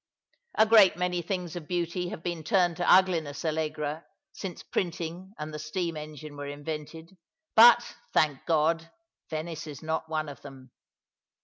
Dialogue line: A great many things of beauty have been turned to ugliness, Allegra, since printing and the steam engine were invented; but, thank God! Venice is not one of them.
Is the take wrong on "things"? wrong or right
right